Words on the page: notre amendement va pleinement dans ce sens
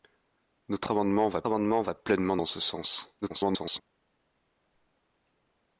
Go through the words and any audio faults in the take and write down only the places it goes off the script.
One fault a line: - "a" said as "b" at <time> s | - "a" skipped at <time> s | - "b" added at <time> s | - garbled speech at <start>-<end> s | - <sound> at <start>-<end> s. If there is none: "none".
- "amendement va" added at 1.4 s
- garbled speech at 3.2-3.8 s